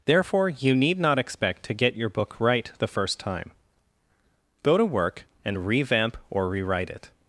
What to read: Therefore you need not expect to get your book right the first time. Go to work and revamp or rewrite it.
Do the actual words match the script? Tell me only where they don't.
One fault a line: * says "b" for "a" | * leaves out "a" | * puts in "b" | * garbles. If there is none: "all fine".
all fine